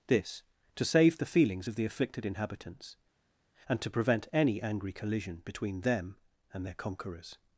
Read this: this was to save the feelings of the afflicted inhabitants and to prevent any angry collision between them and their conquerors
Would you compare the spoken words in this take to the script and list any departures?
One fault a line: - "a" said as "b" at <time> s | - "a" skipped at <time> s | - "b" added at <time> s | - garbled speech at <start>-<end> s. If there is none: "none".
- "was" skipped at 0.4 s